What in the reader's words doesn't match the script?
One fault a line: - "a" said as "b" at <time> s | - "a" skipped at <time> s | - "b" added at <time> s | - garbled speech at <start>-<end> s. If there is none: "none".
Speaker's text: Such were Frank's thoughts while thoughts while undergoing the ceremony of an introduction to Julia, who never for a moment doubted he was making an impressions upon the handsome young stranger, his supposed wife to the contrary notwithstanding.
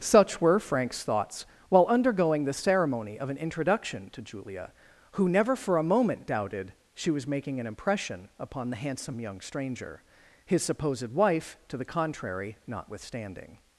- "thoughts while" skipped at 1.9 s
- "he" said as "she" at 7.0 s
- "impressions" said as "impression" at 7.7 s